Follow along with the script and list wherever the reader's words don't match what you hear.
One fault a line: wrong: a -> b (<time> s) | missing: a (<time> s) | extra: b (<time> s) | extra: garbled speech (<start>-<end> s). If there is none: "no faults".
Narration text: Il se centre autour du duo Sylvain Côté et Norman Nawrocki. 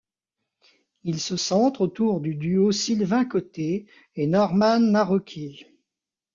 no faults